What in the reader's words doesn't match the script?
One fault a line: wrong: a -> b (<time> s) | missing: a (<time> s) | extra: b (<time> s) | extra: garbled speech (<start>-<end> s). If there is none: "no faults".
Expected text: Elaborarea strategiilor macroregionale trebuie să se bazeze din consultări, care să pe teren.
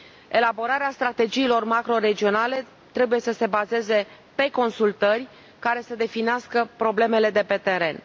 wrong: din -> pe (4.3 s)
extra: definească problemele de (5.9 s)